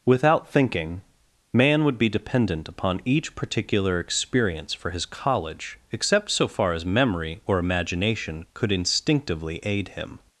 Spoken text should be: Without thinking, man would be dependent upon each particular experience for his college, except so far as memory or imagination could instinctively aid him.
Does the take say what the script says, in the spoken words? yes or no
yes